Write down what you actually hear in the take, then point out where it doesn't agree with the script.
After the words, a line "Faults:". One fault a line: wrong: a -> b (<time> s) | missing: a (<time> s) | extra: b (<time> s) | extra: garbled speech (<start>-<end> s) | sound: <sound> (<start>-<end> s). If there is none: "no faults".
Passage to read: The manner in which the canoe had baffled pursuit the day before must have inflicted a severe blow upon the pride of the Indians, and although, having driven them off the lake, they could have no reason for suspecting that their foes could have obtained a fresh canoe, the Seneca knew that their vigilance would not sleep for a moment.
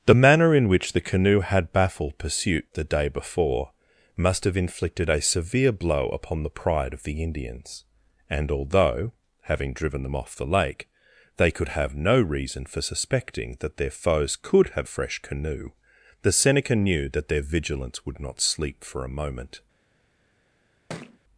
The manner in which the canoe had baffled pursuit the day before must have inflicted a severe blow upon the pride of the Indians, and although, having driven them off the lake, they could have no reason for suspecting that their foes could have a fresh canoe, the Seneca knew that their vigilance would not sleep for a moment.
Faults:
missing: obtained (14.9 s)
sound: thud (20.9-21.2 s)